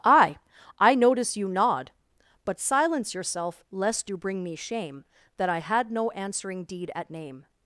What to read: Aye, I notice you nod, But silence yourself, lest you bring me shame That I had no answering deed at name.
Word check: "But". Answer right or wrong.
right